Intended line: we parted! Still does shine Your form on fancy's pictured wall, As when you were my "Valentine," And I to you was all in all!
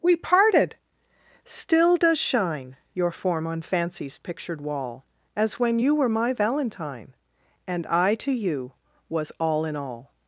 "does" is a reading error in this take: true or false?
false